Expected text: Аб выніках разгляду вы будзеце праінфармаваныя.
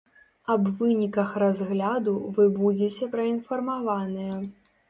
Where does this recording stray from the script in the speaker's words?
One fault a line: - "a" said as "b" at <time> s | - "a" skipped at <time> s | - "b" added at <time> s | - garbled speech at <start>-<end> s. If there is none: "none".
none